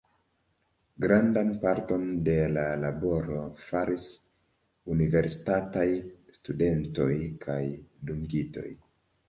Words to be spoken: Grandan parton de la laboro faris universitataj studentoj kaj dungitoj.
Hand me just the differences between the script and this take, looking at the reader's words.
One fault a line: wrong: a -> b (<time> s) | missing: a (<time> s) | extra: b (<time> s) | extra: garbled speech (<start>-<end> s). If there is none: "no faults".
no faults